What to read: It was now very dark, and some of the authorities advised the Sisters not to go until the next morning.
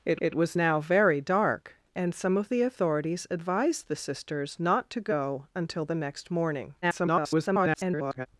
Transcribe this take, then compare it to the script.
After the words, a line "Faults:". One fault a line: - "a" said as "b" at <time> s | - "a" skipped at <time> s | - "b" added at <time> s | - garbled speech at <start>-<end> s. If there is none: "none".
It it was now very dark, and some of the authorities advised the Sisters not to go until the next morning. [garbled]
Faults:
- "it" added at 0.2 s
- garbled speech at 6.8-8.3 s